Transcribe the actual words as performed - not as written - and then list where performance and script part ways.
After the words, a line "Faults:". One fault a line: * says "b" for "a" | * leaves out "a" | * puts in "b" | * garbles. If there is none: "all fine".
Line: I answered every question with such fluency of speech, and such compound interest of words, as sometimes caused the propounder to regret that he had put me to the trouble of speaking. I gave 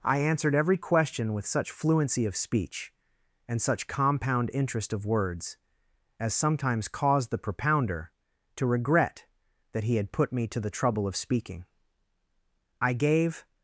I answered every question with such fluency of speech, and such compound interest of words, as sometimes caused the propounder to regret that he had put me to the trouble of speaking. I gave
Faults:
all fine